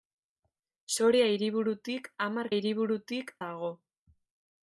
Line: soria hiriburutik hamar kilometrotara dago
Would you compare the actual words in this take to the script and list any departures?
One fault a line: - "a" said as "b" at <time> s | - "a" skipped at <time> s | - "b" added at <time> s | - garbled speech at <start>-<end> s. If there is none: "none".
- "kilometrotara" said as "hiriburutik" at 2.6 s